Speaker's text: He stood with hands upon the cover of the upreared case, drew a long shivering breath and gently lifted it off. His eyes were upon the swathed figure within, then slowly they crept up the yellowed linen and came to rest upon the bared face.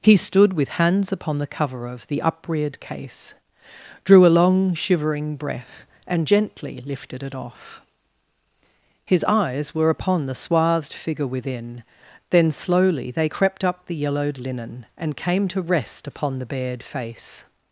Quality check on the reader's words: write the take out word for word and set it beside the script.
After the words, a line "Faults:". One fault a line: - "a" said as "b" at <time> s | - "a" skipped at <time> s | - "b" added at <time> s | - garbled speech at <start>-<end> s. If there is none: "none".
He stood with hands upon the cover of the upreared case, drew a long shivering breath and gently lifted it off. His eyes were upon the swathed figure within, then slowly they crept up the yellowed linen and came to rest upon the bared face.
Faults:
none